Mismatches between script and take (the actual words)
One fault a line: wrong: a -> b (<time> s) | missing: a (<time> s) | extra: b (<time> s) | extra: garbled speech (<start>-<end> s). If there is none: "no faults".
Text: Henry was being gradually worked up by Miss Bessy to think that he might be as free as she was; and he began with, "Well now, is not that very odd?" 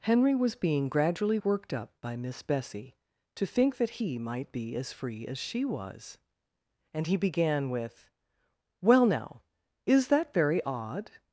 missing: not (10.1 s)